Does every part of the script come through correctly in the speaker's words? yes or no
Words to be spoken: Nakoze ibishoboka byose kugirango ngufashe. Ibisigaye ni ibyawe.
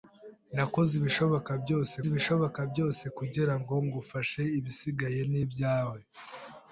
no